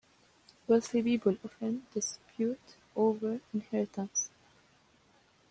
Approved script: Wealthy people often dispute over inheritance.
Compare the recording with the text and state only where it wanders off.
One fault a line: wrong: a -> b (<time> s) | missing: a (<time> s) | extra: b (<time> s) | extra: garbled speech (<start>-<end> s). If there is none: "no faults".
no faults